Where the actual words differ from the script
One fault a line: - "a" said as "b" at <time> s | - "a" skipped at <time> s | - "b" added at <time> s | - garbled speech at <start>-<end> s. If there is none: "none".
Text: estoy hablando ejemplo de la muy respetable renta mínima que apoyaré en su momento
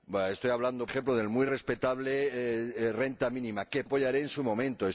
none